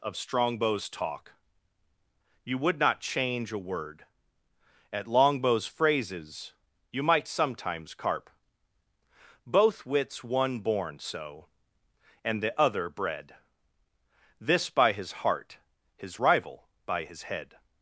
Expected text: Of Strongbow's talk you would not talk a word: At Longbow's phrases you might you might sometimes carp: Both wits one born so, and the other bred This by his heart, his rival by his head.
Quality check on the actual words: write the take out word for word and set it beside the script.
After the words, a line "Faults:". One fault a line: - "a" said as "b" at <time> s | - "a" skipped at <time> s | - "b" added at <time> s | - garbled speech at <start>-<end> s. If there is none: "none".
Of Strongbow's talk you would not change a word: At Longbow's phrases you might sometimes carp: Both wits one born so, and the other bred This by his heart, his rival by his head.
Faults:
- "talk" said as "change" at 3.0 s
- "you might" skipped at 7.3 s